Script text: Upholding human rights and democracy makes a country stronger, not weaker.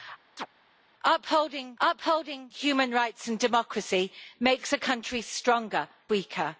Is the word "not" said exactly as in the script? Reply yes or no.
no